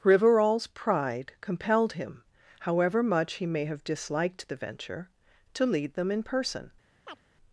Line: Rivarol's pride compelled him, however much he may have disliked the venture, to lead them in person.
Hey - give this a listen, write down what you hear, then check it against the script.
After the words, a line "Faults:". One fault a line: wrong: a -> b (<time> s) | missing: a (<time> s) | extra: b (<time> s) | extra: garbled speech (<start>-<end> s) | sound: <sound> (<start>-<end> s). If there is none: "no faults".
Rivarol's pride compelled him, however much he may have disliked the venture, to lead them in person.
Faults:
sound: chirp (7.1-7.2 s)